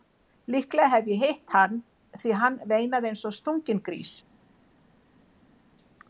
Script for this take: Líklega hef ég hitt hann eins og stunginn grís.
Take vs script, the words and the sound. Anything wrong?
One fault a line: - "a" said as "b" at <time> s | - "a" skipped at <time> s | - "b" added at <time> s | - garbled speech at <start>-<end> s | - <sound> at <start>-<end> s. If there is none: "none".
- "því hann veinaði" added at 2.2 s